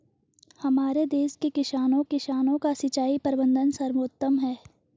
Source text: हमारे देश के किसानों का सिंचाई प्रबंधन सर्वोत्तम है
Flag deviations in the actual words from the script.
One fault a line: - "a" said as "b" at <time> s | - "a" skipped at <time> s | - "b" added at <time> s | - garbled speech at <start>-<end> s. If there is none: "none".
- "किसानों" added at 2.0 s